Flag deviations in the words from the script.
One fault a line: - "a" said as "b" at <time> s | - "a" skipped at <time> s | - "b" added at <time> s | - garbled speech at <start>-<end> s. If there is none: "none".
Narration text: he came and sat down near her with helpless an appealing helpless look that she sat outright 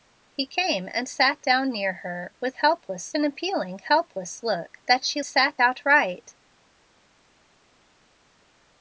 none